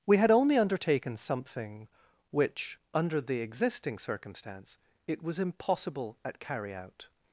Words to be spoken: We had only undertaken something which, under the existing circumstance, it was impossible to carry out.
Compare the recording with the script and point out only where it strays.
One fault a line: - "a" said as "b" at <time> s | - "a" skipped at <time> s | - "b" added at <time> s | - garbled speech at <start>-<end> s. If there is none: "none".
- "to" said as "at" at 6.2 s